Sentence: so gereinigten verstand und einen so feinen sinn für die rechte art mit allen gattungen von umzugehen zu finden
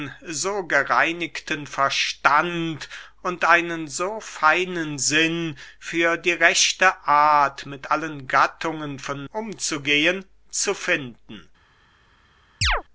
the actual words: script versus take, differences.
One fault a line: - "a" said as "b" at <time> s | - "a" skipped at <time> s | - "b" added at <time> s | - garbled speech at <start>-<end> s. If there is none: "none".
none